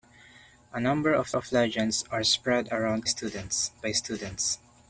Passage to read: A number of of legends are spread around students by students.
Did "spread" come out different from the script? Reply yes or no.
no